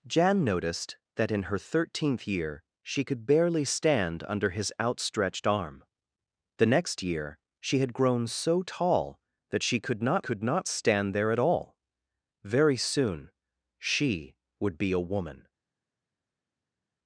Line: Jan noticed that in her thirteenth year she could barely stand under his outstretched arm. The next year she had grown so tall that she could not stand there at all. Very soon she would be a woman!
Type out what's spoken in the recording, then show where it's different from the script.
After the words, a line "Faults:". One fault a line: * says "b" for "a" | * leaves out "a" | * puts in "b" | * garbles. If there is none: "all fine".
Jan noticed that in her thirteenth year she could barely stand under his outstretched arm. The next year she had grown so tall that she could not could not stand there at all. Very soon she would be a woman!
Faults:
* puts in "could not"